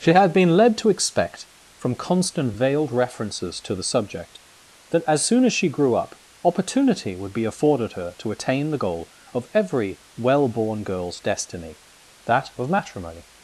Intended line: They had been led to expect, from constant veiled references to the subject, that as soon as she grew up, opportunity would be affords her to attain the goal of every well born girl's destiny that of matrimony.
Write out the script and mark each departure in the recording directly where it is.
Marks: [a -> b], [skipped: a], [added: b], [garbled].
[They -> She] had been led to expect, from constant veiled references to the subject, that as soon as she grew up, opportunity would be [affords -> afforded] her to attain the goal of every well born girl's destiny that of matrimony.